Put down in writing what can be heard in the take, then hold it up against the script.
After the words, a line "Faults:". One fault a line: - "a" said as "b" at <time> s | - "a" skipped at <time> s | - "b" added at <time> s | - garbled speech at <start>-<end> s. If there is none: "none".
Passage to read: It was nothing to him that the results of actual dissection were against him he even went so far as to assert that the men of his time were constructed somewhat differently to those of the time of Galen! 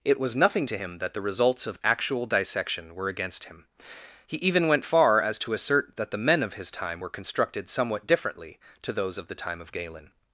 It was nothing to him that the results of actual dissection were against him he even went far as to assert that the men of his time were constructed somewhat differently to those of the time of Galen!
Faults:
- "so" skipped at 4.8 s